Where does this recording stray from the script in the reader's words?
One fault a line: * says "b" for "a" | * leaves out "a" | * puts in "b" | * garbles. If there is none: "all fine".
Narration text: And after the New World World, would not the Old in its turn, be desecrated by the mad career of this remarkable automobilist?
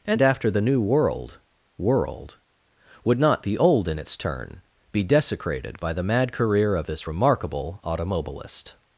all fine